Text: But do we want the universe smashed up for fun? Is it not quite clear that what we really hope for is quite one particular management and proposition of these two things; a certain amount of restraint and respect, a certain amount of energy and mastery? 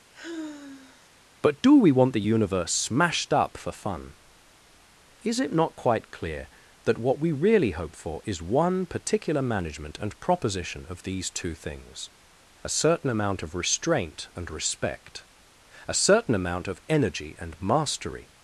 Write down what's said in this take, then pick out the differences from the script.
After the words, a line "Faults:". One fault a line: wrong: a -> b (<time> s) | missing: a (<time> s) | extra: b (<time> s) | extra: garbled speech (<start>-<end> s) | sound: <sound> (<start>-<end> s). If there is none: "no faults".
But do we want the universe smashed up for fun? Is it not quite clear that what we really hope for is one particular management and proposition of these two things; a certain amount of restraint and respect, a certain amount of energy and mastery?
Faults:
sound: sigh (0.1-1.1 s)
missing: quite (8.4 s)